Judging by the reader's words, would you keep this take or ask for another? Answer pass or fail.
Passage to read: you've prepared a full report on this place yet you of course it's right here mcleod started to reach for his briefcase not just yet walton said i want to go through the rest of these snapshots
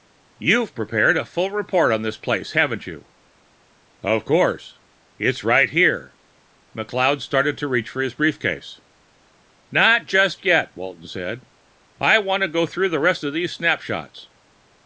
fail